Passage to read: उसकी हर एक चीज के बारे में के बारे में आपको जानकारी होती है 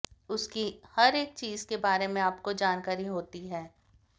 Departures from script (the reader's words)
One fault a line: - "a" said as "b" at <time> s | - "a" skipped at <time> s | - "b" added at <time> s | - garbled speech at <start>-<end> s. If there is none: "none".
- "के बारे में" skipped at 2.2 s